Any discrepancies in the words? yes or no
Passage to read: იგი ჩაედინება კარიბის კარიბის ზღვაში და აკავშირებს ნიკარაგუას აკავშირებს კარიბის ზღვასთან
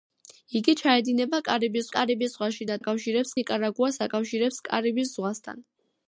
no